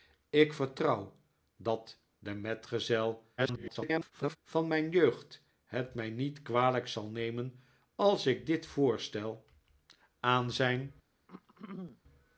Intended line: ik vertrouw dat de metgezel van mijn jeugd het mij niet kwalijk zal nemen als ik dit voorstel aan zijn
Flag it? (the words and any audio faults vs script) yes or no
yes